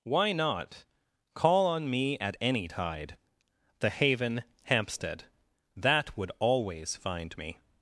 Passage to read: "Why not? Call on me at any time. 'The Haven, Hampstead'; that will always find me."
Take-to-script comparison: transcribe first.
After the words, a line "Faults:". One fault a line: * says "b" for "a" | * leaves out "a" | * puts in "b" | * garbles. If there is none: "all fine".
"Why not? Call on me at any tide. 'The Haven, Hampstead'; that would always find me."
Faults:
* says "tide" for "time"
* says "would" for "will"